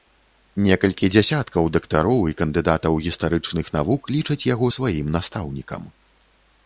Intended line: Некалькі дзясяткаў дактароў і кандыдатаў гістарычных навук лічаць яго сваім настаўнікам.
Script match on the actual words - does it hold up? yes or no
yes